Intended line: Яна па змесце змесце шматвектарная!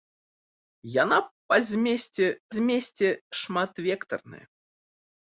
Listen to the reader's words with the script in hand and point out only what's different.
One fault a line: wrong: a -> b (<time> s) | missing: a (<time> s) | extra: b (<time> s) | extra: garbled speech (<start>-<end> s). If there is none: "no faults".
no faults